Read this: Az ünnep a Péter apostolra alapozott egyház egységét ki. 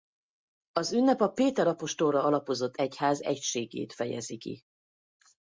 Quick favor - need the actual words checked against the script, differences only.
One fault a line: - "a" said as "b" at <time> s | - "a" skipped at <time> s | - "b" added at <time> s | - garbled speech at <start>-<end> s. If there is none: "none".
- "fejezi" added at 3.9 s